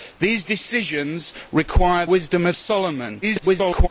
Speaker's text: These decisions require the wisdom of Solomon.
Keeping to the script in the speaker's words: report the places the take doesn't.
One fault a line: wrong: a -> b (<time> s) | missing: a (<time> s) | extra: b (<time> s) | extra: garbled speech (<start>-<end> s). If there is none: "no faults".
missing: the (2.0 s)
extra: garbled speech (3.2-3.9 s)